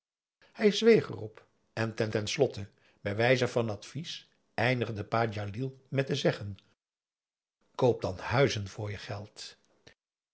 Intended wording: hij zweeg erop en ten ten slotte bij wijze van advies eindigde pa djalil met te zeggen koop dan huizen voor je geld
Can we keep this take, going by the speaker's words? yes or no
yes